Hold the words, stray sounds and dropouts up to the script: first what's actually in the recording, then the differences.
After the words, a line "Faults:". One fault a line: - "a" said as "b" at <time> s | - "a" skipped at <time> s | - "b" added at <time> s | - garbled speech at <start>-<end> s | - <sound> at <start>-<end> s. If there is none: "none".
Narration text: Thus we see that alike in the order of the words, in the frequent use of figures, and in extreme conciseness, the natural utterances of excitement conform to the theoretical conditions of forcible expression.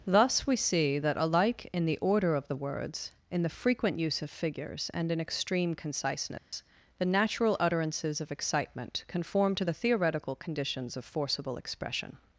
Thus we see that alike in the order of the words, in the frequent use of figures, and in extreme conciseness, the natural utterances of excitement conform to the theoretical conditions of forcible expression.
Faults:
- dropout at 6.4-6.5 s